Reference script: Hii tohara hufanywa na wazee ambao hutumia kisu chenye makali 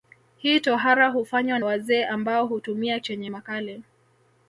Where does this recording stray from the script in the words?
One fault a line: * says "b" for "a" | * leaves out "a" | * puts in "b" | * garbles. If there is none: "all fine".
* leaves out "na"
* leaves out "kisu"